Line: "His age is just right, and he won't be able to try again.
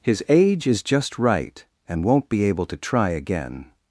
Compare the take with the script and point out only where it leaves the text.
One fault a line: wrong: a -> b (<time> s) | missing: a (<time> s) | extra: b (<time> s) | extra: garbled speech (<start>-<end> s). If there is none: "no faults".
missing: he (2.0 s)